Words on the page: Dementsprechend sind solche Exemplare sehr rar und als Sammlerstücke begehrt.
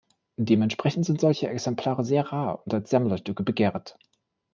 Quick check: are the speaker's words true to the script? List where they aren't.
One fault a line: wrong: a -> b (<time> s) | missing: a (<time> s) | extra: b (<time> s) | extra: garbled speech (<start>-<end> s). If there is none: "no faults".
no faults